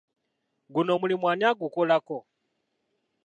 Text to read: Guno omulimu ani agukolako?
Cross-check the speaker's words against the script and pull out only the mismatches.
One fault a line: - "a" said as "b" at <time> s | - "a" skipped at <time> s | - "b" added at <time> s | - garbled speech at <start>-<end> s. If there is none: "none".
none